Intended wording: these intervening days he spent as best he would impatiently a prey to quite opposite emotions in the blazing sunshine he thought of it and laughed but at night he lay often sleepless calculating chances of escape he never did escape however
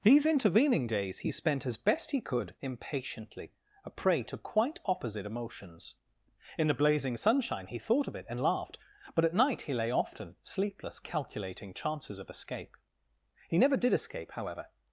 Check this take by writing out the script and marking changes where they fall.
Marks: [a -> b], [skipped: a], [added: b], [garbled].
these intervening days he spent as best he [would -> could] impatiently a prey to quite opposite emotions in the blazing sunshine he thought of it and laughed but at night he lay often sleepless calculating chances of escape he never did escape however